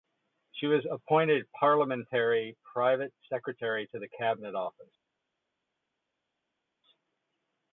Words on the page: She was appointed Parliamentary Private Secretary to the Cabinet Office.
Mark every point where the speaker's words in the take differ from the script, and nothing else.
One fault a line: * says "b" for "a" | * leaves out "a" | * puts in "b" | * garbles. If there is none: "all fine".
all fine